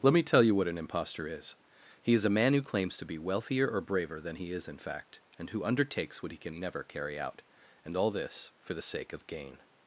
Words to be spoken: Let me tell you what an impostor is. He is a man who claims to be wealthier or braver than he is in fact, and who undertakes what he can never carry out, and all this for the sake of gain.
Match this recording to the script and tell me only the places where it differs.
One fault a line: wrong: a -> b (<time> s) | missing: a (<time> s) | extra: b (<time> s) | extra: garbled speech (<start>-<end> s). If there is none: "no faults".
no faults